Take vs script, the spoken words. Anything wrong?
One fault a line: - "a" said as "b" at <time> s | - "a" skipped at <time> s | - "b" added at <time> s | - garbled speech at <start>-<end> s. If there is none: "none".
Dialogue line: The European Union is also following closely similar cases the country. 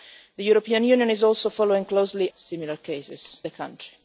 none